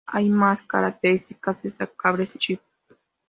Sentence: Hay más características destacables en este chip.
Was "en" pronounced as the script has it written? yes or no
no